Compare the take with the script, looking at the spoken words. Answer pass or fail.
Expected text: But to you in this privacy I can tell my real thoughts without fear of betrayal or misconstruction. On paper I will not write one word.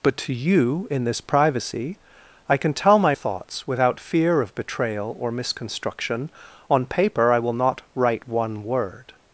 fail